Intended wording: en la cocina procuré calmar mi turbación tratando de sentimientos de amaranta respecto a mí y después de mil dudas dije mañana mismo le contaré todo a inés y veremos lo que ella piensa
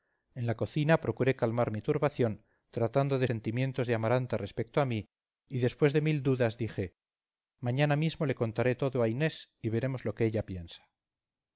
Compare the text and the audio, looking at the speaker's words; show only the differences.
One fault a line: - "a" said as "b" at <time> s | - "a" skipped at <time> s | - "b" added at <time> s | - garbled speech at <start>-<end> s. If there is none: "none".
none